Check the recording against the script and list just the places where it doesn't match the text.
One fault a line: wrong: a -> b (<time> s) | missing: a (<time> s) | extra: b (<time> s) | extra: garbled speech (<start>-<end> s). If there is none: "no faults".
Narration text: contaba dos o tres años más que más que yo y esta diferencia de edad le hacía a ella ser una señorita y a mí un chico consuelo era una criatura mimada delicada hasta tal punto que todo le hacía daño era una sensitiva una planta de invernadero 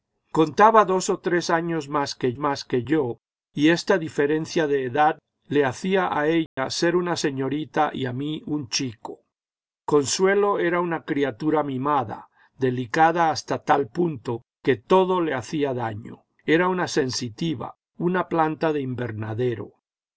no faults